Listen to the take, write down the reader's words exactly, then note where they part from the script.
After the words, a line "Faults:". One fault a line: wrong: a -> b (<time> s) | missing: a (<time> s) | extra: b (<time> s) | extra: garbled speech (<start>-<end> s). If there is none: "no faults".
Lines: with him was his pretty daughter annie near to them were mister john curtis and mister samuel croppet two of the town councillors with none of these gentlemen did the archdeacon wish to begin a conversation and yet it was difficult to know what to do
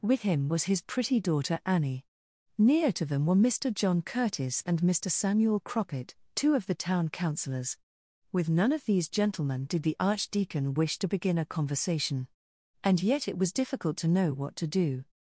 with him was his pretty daughter annie near to them were mister john curtis and mister samuel croppet two of the town councillors with none of these gentlemen did the archdeacon wish to begin a conversation and yet it was difficult to know what to do
Faults:
no faults